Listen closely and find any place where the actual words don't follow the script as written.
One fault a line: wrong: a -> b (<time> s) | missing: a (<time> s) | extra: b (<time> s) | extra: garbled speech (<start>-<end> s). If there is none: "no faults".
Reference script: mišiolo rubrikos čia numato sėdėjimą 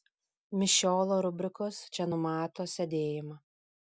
no faults